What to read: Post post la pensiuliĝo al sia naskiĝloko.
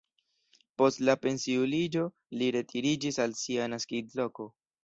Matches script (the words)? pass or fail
fail